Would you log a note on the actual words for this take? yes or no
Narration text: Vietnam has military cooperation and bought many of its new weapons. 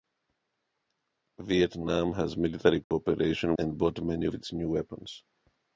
no